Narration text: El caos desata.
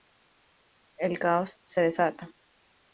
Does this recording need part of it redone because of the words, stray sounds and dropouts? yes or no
yes